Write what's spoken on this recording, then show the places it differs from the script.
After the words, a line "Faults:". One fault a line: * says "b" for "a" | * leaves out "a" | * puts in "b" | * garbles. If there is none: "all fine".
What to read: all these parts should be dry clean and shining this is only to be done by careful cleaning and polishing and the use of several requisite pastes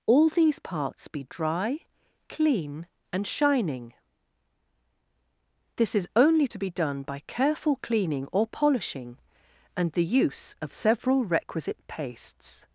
all these parts be dry clean and shining this is only to be done by careful cleaning or polishing and the use of several requisite pastes
Faults:
* leaves out "should"
* says "or" for "and"